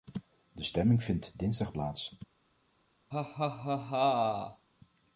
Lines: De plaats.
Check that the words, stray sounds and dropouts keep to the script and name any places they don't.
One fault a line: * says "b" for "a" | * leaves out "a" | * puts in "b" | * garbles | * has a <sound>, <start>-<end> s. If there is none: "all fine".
* puts in "stemming vindt dinsdag"
* has a laugh, 3.1-4.7 s